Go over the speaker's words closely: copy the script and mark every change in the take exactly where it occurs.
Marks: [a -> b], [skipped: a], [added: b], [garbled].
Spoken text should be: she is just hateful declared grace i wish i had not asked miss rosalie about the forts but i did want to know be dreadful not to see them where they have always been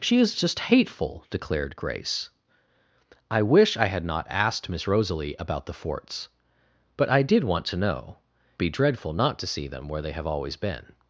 she is just hateful declared grace i wish i had not asked miss rosalie about the forts but i did want to know be dreadful not to see them where they have always been